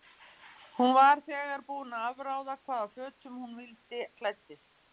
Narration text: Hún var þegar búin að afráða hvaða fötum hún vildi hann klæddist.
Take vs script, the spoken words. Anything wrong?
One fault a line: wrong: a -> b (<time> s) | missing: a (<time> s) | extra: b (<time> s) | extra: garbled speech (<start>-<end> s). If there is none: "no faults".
missing: hann (4.0 s)